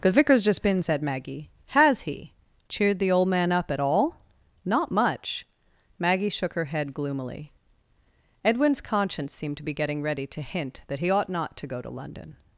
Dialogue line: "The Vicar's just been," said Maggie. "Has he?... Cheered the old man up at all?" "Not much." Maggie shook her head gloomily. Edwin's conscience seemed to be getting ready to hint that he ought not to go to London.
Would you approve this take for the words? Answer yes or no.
yes